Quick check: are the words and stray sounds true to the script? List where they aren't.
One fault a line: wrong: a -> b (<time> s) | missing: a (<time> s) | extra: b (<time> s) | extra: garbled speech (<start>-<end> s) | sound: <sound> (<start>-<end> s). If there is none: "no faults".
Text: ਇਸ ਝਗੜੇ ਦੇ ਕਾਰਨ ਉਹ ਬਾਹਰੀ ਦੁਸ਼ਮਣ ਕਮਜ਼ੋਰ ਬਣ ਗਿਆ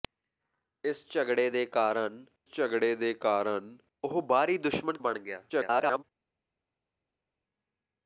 extra: ਝਗੜੇ ਦੇ ਕਾਰਨ (2.5 s)
missing: ਕਮਜ਼ੋਰ (5.0 s)
extra: garbled speech (5.5-6.0 s)